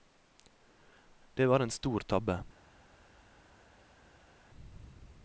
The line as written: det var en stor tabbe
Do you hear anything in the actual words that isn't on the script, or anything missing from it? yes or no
no